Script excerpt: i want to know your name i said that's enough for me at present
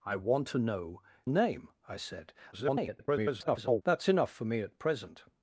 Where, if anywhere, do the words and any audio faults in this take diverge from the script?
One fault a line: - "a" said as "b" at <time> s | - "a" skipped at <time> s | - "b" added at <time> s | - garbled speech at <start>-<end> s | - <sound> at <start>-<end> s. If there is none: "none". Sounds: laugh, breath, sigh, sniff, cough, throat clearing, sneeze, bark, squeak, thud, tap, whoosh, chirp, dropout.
- "your" skipped at 1.0 s
- garbled speech at 2.5-3.8 s